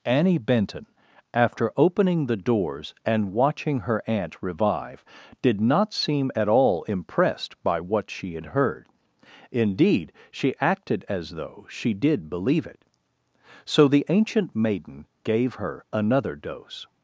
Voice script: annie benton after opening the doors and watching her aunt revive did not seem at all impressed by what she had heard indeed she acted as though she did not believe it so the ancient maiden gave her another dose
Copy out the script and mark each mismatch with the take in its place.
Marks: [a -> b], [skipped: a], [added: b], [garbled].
annie benton after opening the doors and watching her aunt revive did not seem at all impressed by what she had heard indeed she acted as though she did [skipped: not] believe it so the ancient maiden gave her another dose